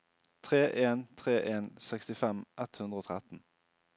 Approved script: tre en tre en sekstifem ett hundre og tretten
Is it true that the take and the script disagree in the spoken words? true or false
false